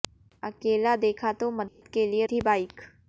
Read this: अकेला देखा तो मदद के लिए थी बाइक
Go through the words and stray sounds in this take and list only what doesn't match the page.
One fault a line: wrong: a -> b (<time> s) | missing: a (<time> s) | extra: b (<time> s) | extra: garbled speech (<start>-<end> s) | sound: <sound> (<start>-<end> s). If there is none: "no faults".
sound: dropout (1.7-1.8 s)